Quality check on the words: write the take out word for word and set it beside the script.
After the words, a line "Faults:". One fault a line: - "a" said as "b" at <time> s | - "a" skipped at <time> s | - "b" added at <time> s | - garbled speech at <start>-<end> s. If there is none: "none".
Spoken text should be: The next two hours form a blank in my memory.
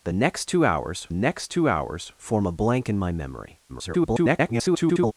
The next two hours next two hours form a blank in my memory. [garbled]
Faults:
- "next two hours" added at 1.1 s
- garbled speech at 3.7-5.1 s